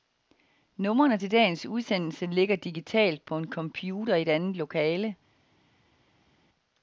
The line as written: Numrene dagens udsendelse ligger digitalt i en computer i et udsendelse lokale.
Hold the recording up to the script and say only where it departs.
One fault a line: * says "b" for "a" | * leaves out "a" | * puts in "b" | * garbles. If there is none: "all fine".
* puts in "til"
* says "på" for "i"
* says "andet" for "udsendelse"